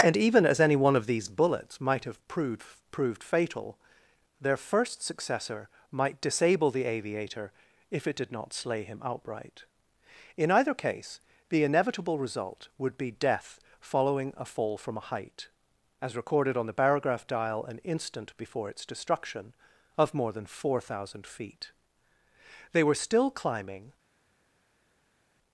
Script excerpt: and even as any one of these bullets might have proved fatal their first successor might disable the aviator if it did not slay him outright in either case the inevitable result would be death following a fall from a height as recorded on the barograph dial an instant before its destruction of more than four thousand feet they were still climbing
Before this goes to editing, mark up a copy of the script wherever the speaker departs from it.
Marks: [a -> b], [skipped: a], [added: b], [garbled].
and even as any one of these bullets might have proved [added: proved] fatal their first successor might disable the aviator if it did not slay him outright in either case the inevitable result would be death following a fall from a height as recorded on the barograph dial an instant before its destruction of more than four thousand feet they were still climbing